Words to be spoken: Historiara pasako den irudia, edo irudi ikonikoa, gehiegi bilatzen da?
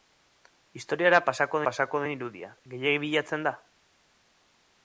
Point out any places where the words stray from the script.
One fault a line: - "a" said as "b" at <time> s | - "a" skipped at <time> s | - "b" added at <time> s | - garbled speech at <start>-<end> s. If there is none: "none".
- "pasako" added at 1.7 s
- "edo irudi ikonikoa" skipped at 2.5 s